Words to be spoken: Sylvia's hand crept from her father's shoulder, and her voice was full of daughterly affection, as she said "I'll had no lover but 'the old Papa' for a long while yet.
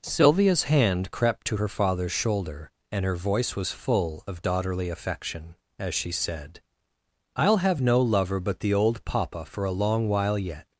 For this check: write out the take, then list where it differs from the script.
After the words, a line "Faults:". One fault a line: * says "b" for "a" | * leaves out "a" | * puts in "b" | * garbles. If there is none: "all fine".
Sylvia's hand crept to her father's shoulder, and her voice was full of daughterly affection, as she said "I'll have no lover but 'the old Papa' for a long while yet.
Faults:
* says "to" for "from"
* says "have" for "had"